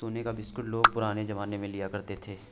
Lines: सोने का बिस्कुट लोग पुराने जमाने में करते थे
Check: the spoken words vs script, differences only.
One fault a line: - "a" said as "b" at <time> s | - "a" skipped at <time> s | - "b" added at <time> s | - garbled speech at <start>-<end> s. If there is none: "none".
- "लिया" added at 1.7 s